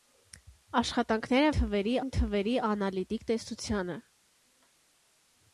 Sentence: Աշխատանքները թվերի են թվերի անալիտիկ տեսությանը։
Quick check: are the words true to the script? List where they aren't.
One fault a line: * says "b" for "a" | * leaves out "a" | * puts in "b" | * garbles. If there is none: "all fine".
all fine